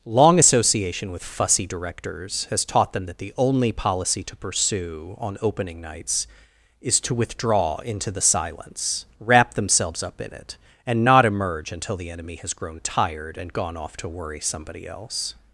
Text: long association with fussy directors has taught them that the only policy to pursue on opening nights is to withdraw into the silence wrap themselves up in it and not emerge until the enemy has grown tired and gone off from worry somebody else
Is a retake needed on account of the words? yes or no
yes